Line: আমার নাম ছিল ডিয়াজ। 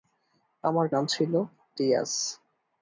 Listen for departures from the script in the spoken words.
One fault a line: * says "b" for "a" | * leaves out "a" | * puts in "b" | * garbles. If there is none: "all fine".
all fine